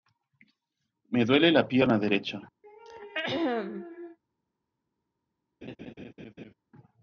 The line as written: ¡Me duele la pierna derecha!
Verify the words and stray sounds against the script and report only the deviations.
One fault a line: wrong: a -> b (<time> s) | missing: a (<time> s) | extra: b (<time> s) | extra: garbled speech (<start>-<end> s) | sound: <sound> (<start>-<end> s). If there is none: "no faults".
sound: throat clearing (2.6-4.2 s)
sound: laugh (5.6-6.5 s)